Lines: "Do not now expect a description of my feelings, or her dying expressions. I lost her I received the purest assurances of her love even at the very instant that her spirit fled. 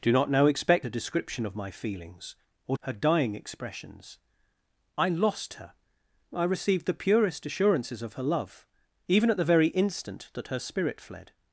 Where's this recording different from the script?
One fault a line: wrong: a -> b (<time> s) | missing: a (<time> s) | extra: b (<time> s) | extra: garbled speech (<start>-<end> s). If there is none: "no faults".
no faults